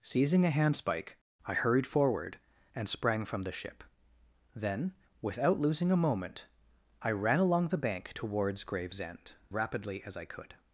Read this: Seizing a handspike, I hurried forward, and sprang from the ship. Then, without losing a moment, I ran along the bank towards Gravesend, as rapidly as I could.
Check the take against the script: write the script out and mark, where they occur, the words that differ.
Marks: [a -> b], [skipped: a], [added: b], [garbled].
Seizing a handspike, I hurried forward, and sprang from the ship. Then, without losing a moment, I ran along the bank towards Gravesend, [skipped: as] rapidly as I could.